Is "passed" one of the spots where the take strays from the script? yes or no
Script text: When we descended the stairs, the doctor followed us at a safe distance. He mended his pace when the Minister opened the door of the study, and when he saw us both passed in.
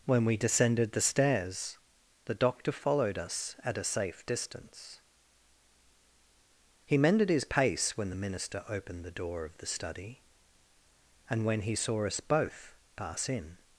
yes